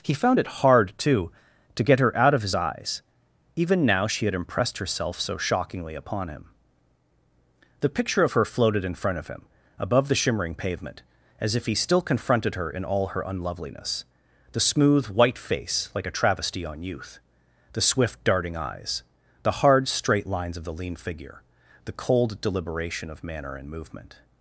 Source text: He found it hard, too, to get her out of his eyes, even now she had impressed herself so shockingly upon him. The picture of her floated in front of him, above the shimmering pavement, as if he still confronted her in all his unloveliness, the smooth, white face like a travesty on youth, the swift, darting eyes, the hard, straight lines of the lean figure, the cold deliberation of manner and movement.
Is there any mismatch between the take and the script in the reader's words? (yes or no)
yes